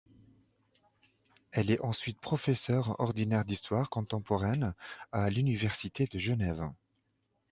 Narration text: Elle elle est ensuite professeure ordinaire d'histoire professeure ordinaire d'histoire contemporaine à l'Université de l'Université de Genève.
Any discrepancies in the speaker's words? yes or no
yes